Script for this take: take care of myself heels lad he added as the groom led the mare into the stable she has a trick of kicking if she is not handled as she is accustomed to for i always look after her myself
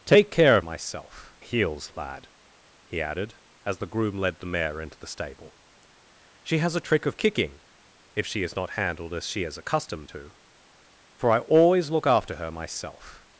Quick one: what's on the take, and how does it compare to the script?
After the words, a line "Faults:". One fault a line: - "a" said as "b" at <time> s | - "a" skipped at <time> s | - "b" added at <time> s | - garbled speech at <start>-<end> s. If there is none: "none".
take care of myself heels lad he added as the groom led the mare into the stable she has a trick of kicking if she is not handled as she is accustomed to for i always look after her myself
Faults:
none